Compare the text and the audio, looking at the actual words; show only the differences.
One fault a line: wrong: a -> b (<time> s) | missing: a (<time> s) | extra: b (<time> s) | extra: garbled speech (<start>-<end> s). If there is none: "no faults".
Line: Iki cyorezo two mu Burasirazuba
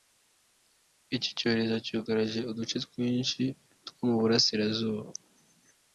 extra: cyugarije uduce twinshi (1.9 s)